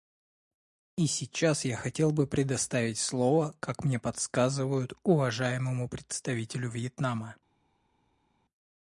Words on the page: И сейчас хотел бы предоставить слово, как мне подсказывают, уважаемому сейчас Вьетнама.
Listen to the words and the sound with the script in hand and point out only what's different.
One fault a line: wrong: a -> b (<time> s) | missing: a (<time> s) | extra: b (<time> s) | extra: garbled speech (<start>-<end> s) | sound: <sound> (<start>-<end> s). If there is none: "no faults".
extra: я (1.6 s)
wrong: сейчас -> представителю (5.9 s)